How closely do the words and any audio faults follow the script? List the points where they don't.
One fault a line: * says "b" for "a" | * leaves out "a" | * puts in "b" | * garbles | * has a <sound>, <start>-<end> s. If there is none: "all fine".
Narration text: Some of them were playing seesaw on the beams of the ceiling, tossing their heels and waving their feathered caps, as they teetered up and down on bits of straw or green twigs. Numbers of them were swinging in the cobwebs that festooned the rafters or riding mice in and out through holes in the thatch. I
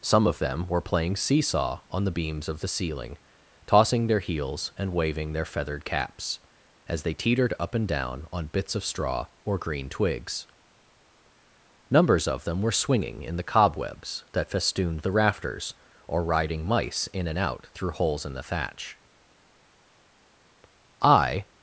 all fine